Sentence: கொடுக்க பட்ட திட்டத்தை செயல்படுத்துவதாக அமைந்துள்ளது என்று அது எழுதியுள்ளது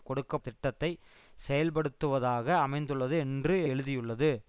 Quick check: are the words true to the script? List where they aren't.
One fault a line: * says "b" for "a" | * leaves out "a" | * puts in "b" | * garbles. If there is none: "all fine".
* leaves out "பட்ட"
* leaves out "அது"